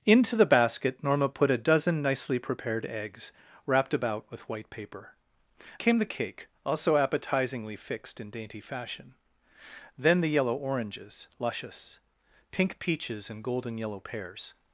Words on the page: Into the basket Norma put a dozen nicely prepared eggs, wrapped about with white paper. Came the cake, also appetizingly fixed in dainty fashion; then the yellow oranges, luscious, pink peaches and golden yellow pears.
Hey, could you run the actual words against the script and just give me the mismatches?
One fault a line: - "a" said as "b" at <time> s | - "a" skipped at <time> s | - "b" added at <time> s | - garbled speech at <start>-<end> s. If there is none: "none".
none